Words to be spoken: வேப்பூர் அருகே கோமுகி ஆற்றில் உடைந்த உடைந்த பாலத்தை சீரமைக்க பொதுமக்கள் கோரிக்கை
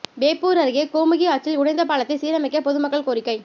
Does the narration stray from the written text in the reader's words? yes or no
yes